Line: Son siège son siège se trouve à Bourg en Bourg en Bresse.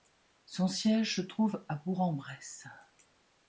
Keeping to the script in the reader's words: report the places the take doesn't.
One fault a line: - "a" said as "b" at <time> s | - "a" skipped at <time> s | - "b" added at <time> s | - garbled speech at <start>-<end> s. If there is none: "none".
- "son siège" skipped at 1.2 s
- "Bourg en" skipped at 2.1 s